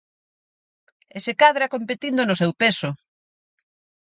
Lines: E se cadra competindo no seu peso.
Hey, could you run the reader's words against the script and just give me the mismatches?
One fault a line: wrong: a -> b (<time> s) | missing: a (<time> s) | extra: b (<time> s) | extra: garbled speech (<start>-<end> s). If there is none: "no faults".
no faults